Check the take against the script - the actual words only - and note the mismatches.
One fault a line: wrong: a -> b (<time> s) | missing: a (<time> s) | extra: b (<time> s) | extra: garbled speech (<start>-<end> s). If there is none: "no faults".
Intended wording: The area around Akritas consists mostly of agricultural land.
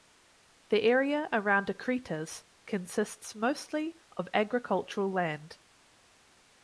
no faults